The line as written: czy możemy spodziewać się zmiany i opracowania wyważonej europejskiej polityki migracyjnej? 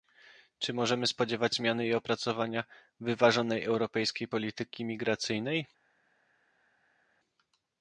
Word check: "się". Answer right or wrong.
wrong